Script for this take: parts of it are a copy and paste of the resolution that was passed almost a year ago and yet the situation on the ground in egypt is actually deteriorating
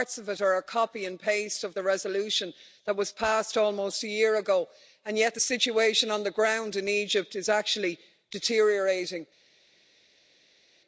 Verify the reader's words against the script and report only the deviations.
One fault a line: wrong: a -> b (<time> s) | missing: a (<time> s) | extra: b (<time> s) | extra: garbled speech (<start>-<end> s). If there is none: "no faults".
no faults